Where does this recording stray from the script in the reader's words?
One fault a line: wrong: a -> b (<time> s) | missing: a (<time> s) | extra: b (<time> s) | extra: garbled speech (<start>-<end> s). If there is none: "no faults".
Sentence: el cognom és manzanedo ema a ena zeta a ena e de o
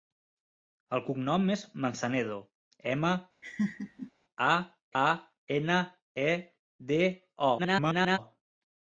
missing: ena zeta (4.5 s)
extra: garbled speech (7.6-8.2 s)